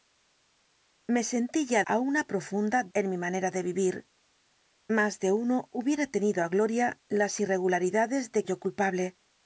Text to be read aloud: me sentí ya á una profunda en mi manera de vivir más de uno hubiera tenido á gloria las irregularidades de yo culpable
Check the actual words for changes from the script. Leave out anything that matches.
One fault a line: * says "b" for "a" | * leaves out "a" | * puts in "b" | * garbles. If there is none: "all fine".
all fine